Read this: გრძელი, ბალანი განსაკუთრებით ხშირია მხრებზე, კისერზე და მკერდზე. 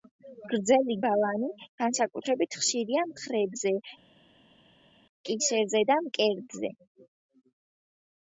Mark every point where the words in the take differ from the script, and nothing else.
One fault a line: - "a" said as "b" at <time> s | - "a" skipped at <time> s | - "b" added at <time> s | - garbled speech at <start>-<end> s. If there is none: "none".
none